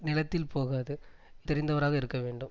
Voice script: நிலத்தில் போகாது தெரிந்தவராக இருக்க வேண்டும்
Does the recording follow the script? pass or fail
pass